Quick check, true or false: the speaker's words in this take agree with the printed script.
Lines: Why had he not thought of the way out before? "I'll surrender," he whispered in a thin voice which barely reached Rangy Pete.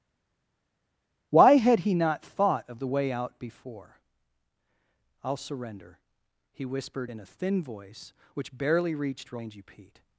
true